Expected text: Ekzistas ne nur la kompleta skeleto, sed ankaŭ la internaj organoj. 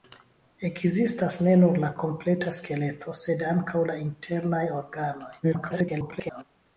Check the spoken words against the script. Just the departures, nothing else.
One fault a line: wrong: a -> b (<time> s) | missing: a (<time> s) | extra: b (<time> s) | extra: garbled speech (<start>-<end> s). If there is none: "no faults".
extra: garbled speech (5.4-6.4 s)